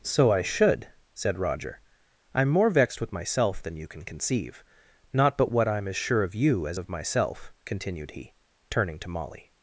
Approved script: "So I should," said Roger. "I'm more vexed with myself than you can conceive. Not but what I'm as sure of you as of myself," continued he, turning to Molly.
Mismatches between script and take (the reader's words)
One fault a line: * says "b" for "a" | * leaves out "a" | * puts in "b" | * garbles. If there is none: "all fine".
all fine